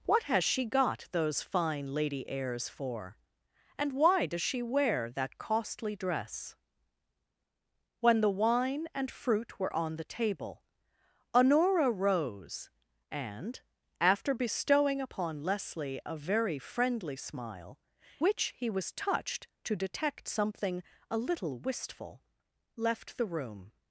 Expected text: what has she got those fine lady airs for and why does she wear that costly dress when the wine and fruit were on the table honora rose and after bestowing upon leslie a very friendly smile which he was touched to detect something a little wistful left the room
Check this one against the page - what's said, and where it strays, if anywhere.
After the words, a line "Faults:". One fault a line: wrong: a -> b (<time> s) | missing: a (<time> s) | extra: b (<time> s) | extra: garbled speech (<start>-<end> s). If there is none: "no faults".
what has she got those fine lady airs for and why does she wear that costly dress when the wine and fruit were on the table honora rose and after bestowing upon leslie a very friendly smile which he was touched to detect something a little wistful left the room
Faults:
no faults